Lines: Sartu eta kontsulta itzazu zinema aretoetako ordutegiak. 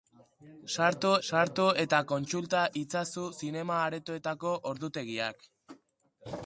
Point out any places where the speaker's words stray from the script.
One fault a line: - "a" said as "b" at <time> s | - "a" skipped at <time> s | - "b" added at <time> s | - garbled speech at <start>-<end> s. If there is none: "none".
- "sartu" added at 1.3 s